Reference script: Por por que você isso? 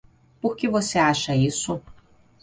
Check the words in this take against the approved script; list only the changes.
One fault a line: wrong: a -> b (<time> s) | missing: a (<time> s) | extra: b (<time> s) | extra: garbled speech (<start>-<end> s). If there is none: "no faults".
missing: por (0.6 s)
extra: acha (1.0 s)